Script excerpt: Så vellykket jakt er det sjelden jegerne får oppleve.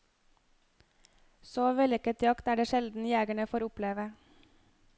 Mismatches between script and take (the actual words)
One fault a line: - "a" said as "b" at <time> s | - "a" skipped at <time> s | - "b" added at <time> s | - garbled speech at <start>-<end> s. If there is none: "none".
none